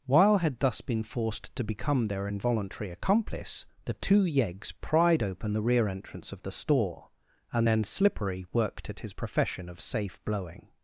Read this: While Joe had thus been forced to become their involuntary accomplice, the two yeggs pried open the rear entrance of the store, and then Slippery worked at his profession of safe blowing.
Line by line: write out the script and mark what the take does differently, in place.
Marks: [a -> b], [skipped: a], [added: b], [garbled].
While [skipped: Joe] had thus been forced to become their involuntary accomplice, the two yeggs pried open the rear entrance of the store, and then Slippery worked at his profession of safe blowing.